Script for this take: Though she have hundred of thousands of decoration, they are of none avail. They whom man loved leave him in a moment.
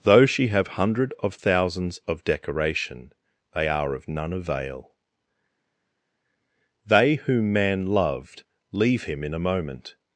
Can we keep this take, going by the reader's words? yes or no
yes